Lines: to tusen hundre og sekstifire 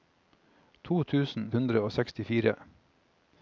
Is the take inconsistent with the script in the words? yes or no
no